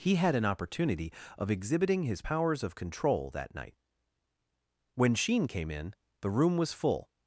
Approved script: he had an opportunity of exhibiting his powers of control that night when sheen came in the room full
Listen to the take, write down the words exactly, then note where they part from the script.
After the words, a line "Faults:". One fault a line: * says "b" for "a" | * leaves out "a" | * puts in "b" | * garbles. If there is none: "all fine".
he had an opportunity of exhibiting his powers of control that night when sheen came in the room was full
Faults:
* puts in "was"